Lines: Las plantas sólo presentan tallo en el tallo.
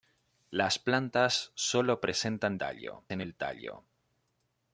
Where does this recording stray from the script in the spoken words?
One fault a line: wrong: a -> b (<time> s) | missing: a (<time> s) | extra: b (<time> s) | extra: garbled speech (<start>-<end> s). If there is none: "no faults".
no faults